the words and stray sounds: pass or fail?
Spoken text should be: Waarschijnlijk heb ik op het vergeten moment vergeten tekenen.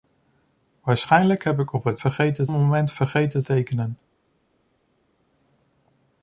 pass